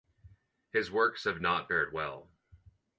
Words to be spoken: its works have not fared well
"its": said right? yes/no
no